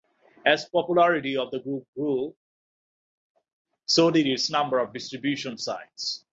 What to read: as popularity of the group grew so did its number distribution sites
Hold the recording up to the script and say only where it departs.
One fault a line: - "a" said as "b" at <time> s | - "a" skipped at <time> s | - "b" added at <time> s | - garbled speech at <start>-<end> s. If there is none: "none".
- "of" added at 4.8 s